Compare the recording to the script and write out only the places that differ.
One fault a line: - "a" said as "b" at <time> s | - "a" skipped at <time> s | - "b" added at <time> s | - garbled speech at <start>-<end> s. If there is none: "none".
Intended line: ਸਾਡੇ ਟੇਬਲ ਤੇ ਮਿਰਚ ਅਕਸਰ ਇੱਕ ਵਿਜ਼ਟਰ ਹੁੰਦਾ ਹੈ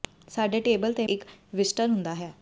- "ਮਿਰਚ ਅਕਸਰ" skipped at 1.1 s